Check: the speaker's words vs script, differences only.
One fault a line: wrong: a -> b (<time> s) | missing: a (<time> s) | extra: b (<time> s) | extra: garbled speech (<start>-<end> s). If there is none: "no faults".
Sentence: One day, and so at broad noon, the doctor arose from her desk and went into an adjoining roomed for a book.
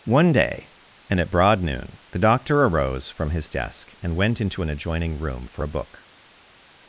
missing: so (1.2 s)
wrong: her -> his (3.3 s)
wrong: roomed -> room (5.2 s)